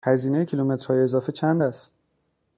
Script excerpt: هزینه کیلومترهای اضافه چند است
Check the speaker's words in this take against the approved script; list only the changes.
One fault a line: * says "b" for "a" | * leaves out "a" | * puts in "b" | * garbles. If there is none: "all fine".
all fine